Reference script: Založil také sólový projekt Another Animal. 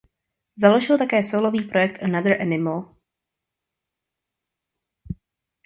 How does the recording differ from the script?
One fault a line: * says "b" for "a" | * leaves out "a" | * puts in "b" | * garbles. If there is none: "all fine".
all fine